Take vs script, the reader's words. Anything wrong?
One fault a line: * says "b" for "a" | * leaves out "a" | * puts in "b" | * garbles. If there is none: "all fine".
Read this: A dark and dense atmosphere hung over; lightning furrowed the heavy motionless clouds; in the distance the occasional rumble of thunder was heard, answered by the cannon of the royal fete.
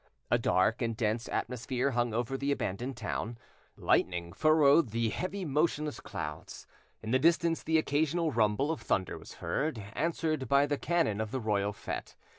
* puts in "the abandoned town"